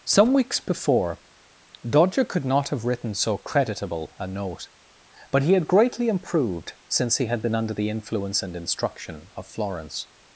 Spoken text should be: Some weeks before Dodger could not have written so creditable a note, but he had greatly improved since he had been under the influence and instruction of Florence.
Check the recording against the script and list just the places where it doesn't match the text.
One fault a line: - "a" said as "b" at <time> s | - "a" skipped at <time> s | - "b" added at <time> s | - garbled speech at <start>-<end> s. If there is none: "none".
none